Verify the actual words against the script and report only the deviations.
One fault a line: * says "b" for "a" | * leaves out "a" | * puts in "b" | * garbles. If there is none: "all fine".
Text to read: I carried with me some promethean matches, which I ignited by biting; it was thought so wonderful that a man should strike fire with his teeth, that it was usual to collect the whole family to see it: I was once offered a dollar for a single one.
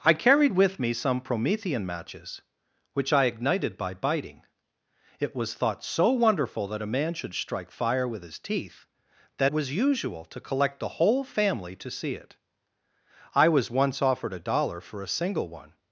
* leaves out "it"